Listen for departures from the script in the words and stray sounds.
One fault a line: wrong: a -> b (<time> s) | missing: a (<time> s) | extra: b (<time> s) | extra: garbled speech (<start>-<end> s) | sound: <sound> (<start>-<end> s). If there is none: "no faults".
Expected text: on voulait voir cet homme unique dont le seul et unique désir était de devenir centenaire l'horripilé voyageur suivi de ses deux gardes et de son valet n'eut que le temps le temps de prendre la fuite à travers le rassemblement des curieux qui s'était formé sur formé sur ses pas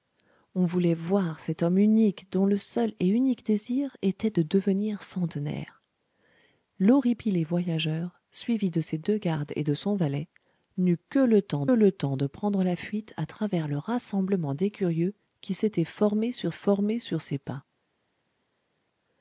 no faults